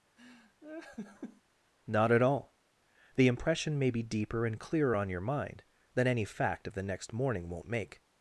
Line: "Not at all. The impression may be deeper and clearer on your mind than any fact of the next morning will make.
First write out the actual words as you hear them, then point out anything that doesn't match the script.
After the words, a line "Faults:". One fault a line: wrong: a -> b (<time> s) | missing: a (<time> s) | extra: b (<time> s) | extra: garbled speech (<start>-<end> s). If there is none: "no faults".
"Not at all. The impression may be deeper and clearer on your mind than any fact of the next morning won't make.
Faults:
wrong: will -> won't (7.5 s)